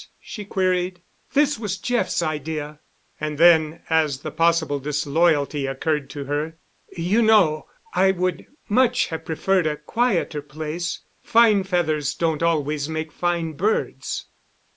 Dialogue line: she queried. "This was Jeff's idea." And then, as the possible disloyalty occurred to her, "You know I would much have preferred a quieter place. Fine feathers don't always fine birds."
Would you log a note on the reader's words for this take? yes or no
yes